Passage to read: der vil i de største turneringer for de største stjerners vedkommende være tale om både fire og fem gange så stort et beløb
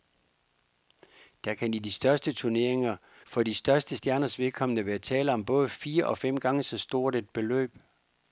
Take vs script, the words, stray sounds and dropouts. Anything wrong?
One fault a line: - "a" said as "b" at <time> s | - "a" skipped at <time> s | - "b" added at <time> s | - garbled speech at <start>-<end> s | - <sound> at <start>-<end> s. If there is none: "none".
- "vil" said as "kan" at 1.5 s